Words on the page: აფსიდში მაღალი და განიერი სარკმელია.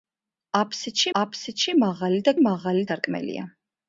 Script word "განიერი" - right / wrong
wrong